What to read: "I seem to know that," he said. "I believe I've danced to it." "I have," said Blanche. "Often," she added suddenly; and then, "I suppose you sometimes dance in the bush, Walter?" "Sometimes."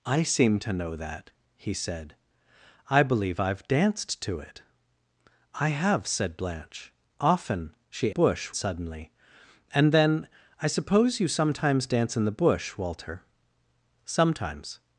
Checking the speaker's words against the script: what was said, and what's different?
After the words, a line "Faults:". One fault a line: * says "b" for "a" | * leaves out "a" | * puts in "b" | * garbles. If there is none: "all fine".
"I seem to know that," he said. "I believe I've danced to it." "I have," said Blanche. "Often," she bush suddenly; and then, "I suppose you sometimes dance in the bush, Walter?" "Sometimes."
Faults:
* says "bush" for "added"